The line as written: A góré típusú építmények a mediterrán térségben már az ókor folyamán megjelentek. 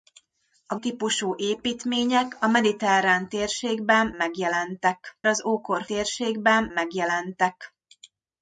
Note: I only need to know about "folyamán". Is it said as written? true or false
false